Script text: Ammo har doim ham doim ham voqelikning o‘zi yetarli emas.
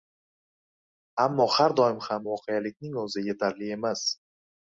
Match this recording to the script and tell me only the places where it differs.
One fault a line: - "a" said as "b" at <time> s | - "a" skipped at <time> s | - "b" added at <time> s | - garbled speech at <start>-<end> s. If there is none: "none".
- "doim ham" skipped at 2.2 s